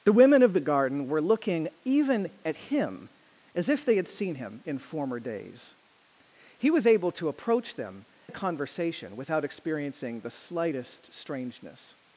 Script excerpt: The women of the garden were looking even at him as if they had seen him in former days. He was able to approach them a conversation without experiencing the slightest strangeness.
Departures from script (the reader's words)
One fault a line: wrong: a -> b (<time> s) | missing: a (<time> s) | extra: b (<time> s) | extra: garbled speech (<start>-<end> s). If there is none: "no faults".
no faults